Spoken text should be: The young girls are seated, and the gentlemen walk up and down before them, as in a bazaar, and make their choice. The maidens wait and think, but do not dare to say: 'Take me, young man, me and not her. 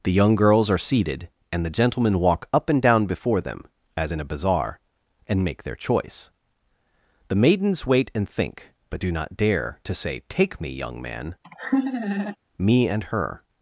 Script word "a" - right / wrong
right